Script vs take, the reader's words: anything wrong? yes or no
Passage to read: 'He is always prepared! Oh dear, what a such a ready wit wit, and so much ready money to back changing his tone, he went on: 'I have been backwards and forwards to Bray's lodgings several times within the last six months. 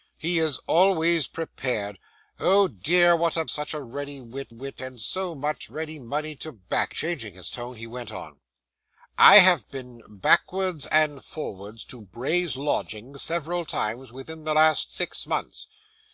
no